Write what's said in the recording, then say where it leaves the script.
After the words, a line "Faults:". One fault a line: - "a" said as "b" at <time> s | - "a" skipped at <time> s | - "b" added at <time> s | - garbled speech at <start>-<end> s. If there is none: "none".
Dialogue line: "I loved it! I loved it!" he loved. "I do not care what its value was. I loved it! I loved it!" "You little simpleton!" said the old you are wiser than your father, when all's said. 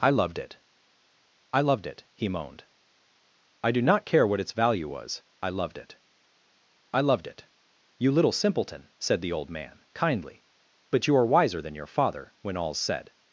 "I loved it! I loved it!" he moaned. "I do not care what its value was. I loved it! I loved it!" "You little simpleton!" said the old man, kindly. "But you are wiser than your father, when all's said.
Faults:
- "loved" said as "moaned" at 2.3 s
- "man kindly But" added at 9.5 s